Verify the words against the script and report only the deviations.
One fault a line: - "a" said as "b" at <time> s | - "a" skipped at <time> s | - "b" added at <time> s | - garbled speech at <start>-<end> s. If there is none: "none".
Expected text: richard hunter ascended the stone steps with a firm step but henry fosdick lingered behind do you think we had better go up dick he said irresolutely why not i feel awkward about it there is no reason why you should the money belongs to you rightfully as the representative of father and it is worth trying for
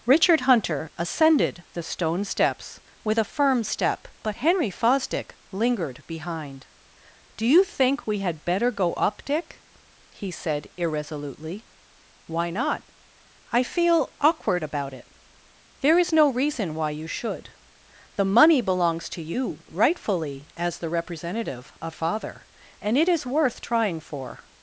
none